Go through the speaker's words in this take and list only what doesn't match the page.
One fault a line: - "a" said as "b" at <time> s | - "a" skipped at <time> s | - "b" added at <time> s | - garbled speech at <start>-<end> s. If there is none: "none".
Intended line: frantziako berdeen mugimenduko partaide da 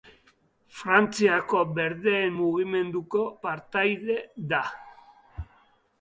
none